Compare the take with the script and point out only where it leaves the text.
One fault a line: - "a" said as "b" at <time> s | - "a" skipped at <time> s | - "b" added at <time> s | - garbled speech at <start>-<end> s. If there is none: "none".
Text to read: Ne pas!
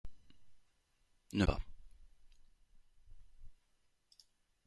none